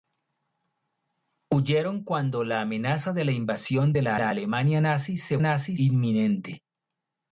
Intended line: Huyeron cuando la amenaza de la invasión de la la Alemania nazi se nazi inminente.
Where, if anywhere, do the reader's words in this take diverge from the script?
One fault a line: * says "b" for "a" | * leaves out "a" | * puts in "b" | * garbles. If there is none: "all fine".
all fine